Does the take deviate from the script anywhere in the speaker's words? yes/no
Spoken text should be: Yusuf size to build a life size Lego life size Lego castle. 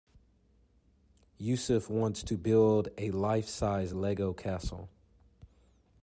yes